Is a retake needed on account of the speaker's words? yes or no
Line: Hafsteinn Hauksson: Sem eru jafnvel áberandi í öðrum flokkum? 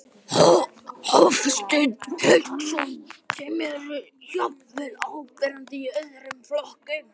no